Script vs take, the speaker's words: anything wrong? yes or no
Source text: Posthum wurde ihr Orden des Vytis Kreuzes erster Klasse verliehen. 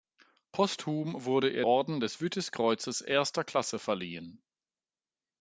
no